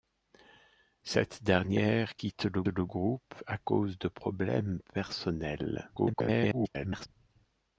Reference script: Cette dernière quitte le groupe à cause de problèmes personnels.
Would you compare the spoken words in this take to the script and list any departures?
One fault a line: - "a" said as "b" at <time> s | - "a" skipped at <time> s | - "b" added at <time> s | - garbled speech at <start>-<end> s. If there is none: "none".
- "le" added at 2.7 s
- garbled speech at 6.0-7.1 s